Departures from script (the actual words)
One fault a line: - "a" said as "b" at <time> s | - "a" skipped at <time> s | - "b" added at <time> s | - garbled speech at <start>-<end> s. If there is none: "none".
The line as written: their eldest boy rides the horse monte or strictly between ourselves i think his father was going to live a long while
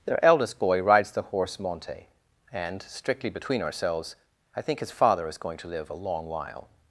- "or" said as "and" at 2.5 s
- "was" said as "is" at 5.3 s